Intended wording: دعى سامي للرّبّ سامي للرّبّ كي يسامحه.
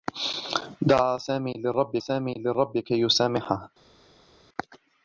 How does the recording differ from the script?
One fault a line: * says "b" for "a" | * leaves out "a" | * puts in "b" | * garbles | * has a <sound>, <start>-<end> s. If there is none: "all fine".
all fine